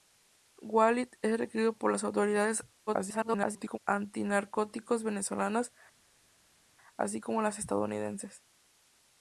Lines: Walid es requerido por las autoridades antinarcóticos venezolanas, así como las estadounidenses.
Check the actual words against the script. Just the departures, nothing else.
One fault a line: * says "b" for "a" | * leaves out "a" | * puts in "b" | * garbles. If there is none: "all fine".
* garbles